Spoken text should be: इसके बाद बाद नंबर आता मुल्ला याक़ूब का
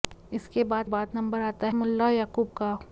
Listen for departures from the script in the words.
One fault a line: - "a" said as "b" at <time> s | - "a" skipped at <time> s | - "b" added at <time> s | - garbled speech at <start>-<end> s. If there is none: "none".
none